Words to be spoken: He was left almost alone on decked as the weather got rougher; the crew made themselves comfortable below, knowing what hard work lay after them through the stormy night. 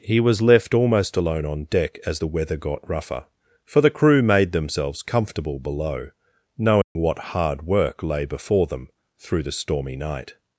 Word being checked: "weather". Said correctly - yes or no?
yes